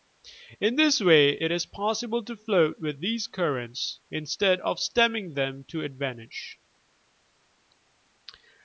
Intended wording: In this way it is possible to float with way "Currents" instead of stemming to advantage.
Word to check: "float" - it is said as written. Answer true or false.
true